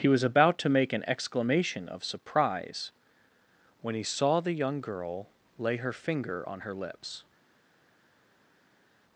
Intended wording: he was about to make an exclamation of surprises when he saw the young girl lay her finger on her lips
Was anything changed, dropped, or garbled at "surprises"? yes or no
yes